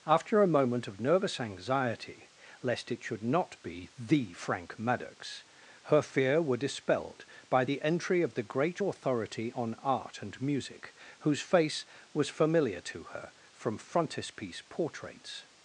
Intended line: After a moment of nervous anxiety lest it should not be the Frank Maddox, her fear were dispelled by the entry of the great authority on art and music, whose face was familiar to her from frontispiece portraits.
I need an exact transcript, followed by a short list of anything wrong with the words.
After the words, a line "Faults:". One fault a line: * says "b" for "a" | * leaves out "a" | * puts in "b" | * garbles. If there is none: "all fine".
After a moment of nervous anxiety lest it should not be the Frank Maddox, her fear were dispelled by the entry of the great authority on art and music, whose face was familiar to her from frontispiece portraits.
Faults:
all fine